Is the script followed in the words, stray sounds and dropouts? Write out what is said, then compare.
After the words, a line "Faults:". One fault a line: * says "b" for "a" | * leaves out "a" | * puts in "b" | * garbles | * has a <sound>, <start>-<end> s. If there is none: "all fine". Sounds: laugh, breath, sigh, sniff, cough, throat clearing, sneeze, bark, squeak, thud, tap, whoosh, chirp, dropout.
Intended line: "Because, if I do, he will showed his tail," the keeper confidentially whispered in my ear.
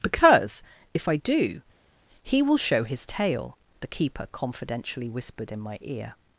"Because, if I do, he will show his tail," the keeper confidentially whispered in my ear.
Faults:
* says "show" for "showed"